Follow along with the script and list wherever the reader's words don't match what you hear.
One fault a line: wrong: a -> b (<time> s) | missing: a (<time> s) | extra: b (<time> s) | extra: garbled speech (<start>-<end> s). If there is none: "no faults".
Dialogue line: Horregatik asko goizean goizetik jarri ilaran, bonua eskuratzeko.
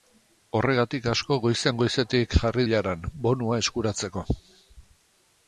no faults